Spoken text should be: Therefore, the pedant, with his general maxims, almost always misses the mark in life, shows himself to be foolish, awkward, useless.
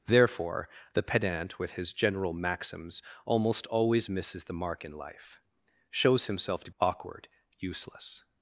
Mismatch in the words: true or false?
true